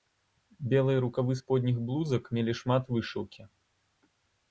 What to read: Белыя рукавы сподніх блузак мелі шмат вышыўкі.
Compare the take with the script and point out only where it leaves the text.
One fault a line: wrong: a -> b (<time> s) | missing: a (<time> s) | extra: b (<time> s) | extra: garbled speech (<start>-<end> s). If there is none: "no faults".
no faults